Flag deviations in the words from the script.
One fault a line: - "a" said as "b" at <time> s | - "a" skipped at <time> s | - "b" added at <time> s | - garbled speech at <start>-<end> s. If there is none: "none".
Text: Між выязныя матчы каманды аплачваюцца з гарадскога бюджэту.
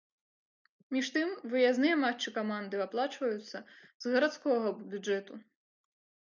- "тым" added at 1.1 s